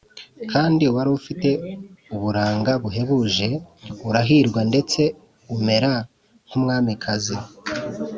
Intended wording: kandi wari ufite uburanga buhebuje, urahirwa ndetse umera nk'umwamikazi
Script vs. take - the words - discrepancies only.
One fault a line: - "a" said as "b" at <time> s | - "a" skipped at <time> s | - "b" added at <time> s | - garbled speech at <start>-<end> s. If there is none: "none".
none